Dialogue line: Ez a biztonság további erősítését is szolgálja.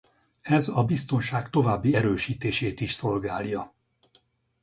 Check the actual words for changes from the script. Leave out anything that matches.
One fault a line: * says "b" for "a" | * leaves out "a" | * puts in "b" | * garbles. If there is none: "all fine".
all fine